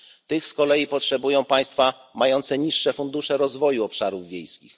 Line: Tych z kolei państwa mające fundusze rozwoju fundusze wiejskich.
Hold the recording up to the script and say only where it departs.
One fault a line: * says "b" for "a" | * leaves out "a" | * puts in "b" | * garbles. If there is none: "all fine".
* puts in "potrzebują"
* puts in "niższe"
* says "obszarów" for "fundusze"